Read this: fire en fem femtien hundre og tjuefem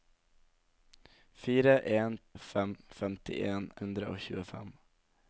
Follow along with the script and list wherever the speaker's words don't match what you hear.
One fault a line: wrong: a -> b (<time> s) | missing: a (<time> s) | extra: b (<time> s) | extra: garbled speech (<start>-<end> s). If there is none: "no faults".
no faults